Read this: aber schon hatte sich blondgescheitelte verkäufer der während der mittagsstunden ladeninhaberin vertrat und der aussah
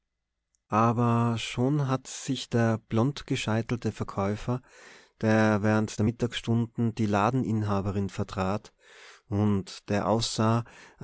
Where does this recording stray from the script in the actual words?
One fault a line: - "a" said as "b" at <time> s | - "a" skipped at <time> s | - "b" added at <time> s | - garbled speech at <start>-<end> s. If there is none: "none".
- "der" added at 2.5 s
- "die" added at 6.9 s